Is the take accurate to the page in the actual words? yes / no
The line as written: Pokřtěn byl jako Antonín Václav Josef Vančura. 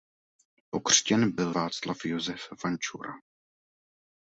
no